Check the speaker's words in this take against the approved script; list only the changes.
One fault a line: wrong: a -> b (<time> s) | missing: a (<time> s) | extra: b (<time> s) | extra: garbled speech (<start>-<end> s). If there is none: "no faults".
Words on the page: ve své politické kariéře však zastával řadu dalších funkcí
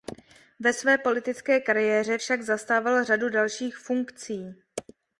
no faults